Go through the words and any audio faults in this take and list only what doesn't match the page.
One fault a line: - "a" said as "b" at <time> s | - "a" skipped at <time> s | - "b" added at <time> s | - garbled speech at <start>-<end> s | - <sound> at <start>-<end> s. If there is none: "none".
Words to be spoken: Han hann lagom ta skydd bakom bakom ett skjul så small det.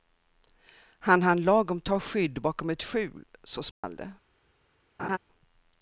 - "bakom" skipped at 2.7 s
- dropout at 3.7-3.8 s
- laugh at 5.0-5.2 s